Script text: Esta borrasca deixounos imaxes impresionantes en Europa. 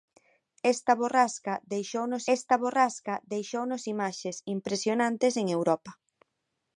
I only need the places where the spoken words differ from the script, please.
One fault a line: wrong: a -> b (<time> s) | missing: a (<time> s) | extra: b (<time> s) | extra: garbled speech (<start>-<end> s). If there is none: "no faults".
extra: esta borrasca deixounos (2.4 s)